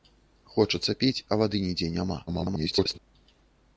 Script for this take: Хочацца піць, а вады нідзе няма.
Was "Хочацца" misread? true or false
false